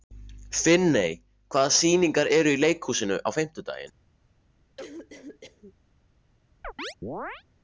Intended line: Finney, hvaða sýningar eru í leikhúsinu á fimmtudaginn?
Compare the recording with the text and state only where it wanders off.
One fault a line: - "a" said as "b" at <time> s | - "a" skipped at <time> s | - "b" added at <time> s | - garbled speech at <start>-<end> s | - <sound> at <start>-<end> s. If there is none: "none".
- cough at 4.8-5.7 s
- chirp at 6.6-7.4 s